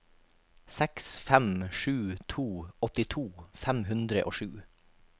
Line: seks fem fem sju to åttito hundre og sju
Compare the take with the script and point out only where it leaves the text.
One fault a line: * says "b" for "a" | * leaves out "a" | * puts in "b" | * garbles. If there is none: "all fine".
* leaves out "fem"
* puts in "fem"